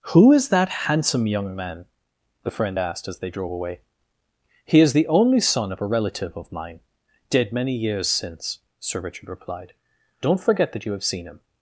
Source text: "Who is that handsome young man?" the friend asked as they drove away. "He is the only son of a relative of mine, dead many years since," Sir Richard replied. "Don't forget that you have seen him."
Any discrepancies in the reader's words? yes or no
no